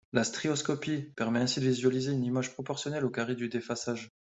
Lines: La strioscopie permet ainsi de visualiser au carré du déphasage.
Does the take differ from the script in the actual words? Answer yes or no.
yes